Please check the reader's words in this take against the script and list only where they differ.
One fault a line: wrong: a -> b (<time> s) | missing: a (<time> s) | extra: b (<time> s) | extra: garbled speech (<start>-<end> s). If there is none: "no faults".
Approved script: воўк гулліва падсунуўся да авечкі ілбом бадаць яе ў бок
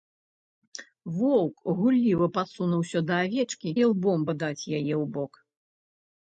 no faults